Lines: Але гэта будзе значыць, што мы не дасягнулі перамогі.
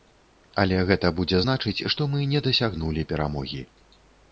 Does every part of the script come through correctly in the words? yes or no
yes